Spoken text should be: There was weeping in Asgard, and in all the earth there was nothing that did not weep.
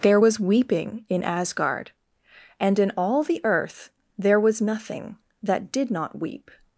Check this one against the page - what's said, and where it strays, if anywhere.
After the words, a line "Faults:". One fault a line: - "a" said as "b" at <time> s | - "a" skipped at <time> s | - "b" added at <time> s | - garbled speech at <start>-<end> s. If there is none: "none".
There was weeping in Asgard, and in all the earth there was nothing that did not weep.
Faults:
none